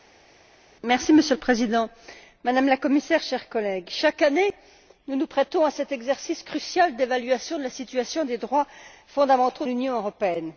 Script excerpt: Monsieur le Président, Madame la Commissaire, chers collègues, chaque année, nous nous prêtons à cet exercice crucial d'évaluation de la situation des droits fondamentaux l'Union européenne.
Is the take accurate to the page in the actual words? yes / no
yes